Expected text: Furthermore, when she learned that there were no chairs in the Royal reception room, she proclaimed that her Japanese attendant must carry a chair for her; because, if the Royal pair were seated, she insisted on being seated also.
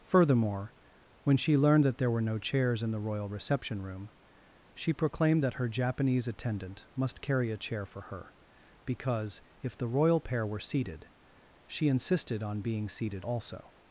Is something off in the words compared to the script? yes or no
no